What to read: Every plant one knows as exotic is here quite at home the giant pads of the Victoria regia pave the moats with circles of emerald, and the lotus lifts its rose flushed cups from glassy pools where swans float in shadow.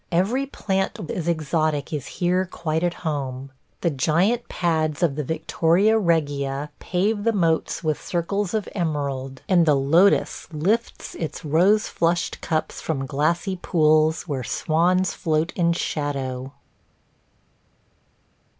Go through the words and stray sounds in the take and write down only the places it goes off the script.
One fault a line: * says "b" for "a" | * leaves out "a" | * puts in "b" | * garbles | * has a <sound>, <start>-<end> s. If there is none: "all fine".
* leaves out "one knows"